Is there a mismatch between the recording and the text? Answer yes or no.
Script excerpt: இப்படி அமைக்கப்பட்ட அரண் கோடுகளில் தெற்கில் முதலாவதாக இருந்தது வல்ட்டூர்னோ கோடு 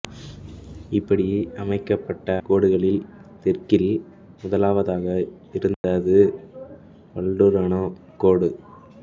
yes